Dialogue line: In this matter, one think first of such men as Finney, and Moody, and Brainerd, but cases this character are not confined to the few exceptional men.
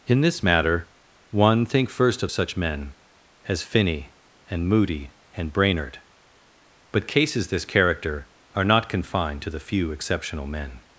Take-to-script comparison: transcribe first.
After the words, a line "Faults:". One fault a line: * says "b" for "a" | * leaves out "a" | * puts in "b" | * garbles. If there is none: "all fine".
In this matter, one think first of such men as Finney, and Moody, and Brainerd, but cases this character are not confined to the few exceptional men.
Faults:
all fine